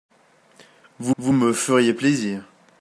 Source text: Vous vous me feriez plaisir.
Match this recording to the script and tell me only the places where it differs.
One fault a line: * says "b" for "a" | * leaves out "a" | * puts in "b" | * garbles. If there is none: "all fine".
all fine